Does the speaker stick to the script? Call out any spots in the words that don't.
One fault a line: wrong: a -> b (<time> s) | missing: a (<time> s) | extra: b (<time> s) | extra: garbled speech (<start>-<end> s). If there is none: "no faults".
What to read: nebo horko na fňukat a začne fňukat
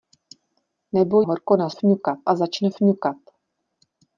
no faults